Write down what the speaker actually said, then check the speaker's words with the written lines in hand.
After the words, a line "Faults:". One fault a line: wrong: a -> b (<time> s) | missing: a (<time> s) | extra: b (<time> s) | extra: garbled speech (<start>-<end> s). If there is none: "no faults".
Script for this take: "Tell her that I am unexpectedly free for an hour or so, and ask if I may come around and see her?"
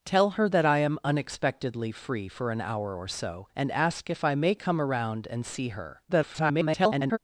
"Tell her that I am unexpectedly free for an hour or so, and ask if I may come around and see her?" [garbled]
Faults:
extra: garbled speech (6.1-7.2 s)